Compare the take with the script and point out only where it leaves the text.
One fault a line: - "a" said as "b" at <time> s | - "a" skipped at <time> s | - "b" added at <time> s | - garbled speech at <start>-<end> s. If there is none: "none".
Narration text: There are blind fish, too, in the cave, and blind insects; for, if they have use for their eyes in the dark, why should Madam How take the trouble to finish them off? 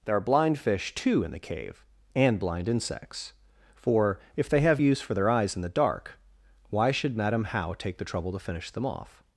none